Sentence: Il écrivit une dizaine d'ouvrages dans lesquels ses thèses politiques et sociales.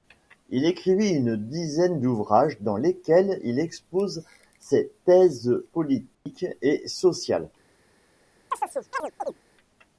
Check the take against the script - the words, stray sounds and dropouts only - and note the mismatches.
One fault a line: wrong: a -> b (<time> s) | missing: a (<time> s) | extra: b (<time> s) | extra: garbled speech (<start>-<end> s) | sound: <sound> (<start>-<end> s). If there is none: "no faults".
extra: il expose (3.4 s)
sound: dropout (6.1-6.3 s)
sound: chirp (8.5-9.4 s)